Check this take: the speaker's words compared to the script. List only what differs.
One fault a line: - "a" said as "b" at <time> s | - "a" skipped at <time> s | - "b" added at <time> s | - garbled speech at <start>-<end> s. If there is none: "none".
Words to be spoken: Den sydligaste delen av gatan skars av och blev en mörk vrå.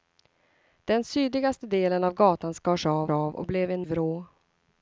- "av" added at 3.1 s
- "mörk" skipped at 3.9 s